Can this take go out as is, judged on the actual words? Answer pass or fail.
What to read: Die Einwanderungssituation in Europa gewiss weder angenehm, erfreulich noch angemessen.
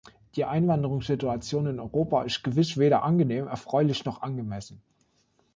fail